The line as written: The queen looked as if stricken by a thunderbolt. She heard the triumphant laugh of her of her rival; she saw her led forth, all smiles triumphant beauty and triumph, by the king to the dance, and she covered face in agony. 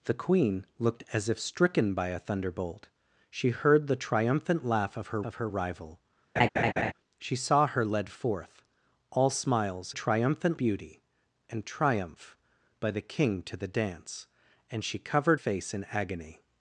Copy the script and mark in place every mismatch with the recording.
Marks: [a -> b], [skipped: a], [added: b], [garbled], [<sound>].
The queen looked as if stricken by a thunderbolt. She heard the triumphant laugh of her of her rival; [laugh] she saw her led forth, all smiles triumphant beauty and triumph, by the king to the dance, and she covered face in agony.